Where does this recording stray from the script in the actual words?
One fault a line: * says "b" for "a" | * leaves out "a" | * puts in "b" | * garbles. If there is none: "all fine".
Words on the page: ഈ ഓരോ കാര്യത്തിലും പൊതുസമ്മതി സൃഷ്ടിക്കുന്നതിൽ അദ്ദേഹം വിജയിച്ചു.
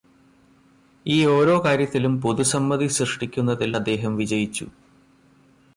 all fine